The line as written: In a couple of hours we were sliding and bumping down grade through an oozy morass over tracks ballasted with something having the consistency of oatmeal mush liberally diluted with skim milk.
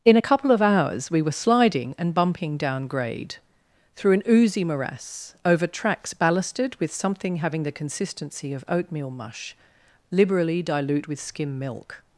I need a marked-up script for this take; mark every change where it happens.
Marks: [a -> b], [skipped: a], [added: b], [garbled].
In a couple of hours we were sliding and bumping down grade through an oozy morass over tracks ballasted with something having the consistency of oatmeal mush liberally [diluted -> dilute] with skim milk.